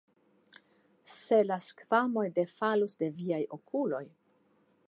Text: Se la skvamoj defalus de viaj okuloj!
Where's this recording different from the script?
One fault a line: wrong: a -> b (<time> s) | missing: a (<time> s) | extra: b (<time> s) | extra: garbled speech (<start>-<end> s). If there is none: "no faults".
no faults